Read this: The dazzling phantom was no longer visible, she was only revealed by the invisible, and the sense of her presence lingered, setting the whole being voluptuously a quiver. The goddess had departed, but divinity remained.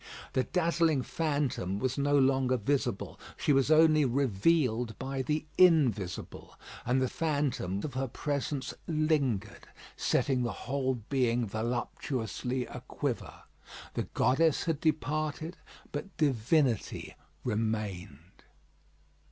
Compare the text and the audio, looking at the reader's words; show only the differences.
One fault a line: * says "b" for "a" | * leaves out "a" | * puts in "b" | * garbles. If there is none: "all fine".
* says "phantom" for "sense"